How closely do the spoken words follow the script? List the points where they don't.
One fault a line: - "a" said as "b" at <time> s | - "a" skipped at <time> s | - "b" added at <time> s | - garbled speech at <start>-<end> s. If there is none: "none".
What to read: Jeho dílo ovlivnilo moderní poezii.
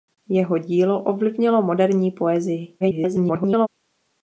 - garbled speech at 2.8-3.7 s